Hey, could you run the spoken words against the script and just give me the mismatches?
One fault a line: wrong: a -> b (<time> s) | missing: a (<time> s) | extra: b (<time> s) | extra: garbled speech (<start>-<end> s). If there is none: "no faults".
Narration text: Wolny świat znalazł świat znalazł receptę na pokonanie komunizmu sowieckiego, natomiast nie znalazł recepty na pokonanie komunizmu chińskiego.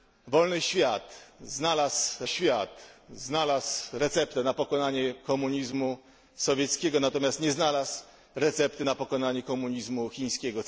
no faults